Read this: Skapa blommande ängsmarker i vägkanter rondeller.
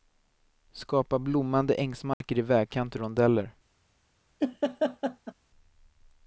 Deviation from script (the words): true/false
false